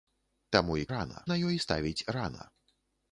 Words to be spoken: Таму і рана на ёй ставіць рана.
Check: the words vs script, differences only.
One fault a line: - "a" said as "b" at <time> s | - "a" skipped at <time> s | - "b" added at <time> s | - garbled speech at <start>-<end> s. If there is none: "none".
none